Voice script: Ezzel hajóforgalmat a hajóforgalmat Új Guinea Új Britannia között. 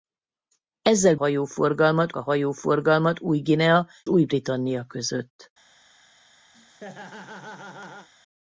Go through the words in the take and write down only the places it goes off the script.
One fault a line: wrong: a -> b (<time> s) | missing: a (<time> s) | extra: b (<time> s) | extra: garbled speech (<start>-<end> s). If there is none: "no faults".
no faults